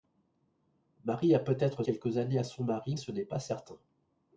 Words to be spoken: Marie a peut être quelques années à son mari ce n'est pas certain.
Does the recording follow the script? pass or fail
pass